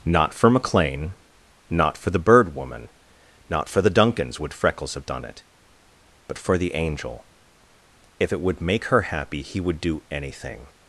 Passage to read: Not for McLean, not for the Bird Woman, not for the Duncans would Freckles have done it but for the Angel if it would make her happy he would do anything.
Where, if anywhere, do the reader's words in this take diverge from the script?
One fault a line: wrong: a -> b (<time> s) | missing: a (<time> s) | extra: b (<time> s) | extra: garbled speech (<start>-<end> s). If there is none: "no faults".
no faults